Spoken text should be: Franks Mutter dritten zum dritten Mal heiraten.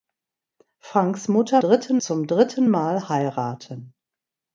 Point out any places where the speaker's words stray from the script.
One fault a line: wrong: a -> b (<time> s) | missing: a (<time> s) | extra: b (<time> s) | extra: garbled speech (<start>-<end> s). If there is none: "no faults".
no faults